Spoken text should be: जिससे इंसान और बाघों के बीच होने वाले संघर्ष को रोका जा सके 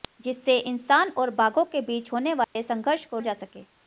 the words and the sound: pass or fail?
fail